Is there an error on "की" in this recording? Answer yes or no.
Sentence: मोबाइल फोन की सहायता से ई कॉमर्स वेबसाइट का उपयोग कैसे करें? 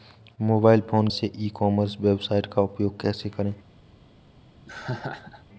yes